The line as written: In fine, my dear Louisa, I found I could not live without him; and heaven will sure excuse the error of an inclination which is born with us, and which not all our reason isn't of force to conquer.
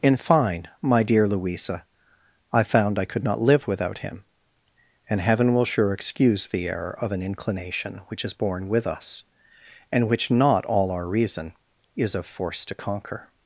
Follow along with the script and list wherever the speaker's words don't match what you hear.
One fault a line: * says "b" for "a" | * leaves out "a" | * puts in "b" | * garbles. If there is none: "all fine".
* says "is" for "isn't"